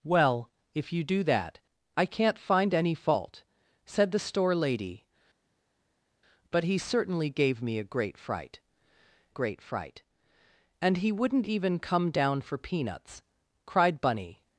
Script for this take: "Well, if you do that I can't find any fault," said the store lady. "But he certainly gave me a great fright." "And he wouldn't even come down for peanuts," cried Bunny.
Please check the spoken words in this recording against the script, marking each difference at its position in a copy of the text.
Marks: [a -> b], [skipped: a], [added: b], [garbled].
"Well, if you do that I can't find any fault," said the store lady. "But he certainly gave me a great fright." [added: great fright] "And he wouldn't even come down for peanuts," cried Bunny.